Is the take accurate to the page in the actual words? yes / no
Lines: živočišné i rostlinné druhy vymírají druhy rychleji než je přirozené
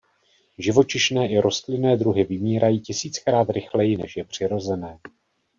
no